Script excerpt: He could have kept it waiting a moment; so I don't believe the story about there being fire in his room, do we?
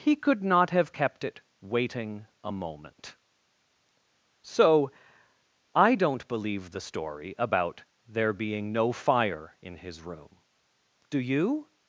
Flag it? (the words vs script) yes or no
yes